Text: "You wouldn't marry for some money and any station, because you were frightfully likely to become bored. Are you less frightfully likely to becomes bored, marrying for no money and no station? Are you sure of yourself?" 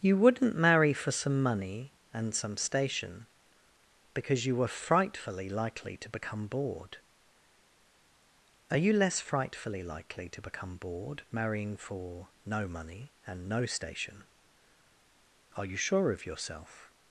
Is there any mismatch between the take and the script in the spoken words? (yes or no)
yes